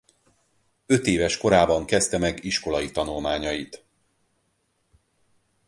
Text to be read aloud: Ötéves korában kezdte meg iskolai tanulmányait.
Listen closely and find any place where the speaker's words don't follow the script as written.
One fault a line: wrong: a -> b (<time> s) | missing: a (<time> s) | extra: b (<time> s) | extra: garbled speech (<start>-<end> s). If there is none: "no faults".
no faults